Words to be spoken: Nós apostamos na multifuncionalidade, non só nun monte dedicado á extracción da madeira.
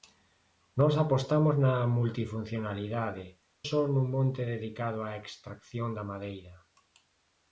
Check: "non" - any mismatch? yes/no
yes